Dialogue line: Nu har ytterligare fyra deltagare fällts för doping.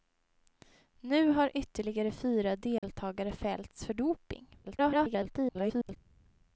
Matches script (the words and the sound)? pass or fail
fail